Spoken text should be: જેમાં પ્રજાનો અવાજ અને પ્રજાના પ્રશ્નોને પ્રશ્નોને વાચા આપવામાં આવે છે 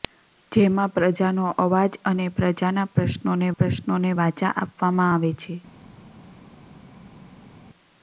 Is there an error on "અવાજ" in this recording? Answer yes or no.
no